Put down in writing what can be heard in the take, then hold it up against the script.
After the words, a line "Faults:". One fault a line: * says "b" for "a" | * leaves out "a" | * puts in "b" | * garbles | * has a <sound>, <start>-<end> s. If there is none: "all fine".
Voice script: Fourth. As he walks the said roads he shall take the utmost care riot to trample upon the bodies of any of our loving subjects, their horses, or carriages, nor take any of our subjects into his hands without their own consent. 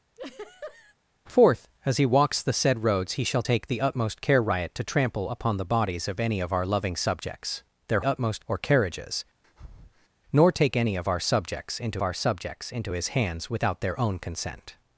Fourth. As he walks the said roads he shall take the utmost care riot to trample upon the bodies of any of our loving subjects, their utmost, or carriages, nor take any of our subjects into our subjects into his hands without their own consent.
Faults:
* has a laugh, 0.1-0.9 s
* says "utmost" for "horses"
* has a breath, 9.4-10.1 s
* puts in "our subjects into"